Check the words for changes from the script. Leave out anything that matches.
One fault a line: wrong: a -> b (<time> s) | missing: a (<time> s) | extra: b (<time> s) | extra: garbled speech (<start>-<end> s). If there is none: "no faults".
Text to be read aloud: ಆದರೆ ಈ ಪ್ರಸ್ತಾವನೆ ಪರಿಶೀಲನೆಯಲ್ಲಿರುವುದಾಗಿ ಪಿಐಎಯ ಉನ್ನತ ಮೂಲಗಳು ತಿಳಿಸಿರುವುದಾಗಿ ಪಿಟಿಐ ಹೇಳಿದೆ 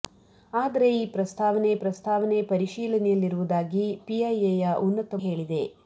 extra: ಪ್ರಸ್ತಾವನೆ (1.8 s)
missing: ಮೂಲಗಳು ತಿಳಿಸಿರುವುದಾಗಿ ಪಿಟಿಐ (5.2 s)